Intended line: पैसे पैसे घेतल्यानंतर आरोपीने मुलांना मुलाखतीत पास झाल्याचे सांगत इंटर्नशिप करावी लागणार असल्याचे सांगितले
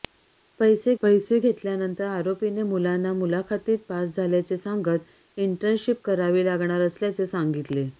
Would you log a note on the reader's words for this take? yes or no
no